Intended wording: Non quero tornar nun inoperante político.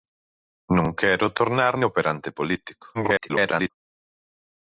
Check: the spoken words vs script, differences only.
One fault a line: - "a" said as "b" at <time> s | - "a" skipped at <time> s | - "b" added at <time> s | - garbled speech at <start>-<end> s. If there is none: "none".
- "nun" skipped at 1.7 s
- garbled speech at 2.9-3.7 s